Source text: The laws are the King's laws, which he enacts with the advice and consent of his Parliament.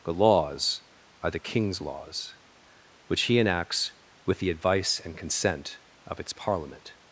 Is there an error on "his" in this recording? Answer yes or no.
yes